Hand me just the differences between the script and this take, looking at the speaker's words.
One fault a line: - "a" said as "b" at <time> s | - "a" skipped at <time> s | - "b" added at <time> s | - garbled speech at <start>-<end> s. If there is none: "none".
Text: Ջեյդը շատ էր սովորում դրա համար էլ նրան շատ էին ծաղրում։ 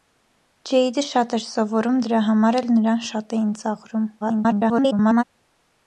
- garbled speech at 4.2-5.2 s